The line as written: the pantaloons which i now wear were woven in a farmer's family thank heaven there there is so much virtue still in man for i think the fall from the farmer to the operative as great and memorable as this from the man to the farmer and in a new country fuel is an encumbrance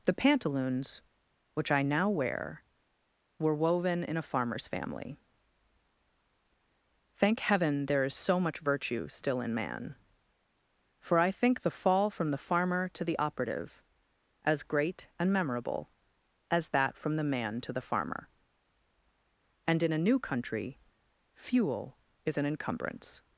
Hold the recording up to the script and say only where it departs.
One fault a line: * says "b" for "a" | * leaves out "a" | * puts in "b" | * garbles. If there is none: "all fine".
* leaves out "there"
* says "that" for "this"